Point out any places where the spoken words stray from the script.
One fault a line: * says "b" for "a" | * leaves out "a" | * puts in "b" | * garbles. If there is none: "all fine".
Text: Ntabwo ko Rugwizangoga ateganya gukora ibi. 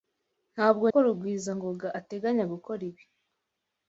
all fine